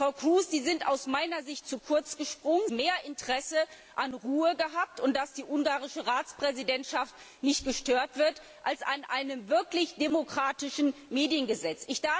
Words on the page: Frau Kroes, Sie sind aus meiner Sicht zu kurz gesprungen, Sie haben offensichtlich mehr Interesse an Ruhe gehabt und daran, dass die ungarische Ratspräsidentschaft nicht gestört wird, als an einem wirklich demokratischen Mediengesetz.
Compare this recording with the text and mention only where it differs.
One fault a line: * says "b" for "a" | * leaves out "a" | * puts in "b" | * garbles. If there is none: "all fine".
* leaves out "Sie haben offensichtlich"